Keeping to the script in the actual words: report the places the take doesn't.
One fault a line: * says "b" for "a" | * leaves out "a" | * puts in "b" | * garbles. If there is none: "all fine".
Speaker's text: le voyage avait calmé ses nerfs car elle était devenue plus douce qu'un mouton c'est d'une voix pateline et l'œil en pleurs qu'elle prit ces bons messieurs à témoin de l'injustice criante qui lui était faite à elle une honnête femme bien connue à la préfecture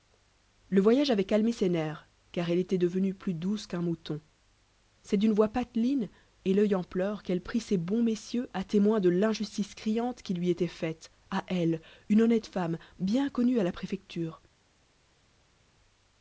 all fine